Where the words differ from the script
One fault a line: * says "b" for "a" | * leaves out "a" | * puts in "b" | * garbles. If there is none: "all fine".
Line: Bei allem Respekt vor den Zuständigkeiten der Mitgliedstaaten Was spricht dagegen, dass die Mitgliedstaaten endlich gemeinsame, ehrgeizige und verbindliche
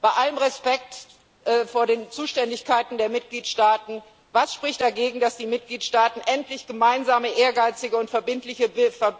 all fine